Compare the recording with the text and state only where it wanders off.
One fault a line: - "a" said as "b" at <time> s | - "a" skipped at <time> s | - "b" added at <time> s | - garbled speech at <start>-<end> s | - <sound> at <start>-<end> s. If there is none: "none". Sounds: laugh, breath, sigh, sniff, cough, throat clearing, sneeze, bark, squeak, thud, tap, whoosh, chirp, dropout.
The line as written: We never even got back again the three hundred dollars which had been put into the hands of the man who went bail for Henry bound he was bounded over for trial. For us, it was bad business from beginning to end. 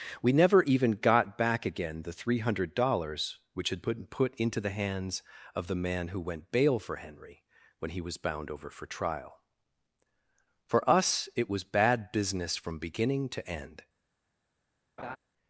- "bound" said as "when" at 7.8 s
- "bounded" said as "bound" at 8.2 s
- laugh at 15.0-15.2 s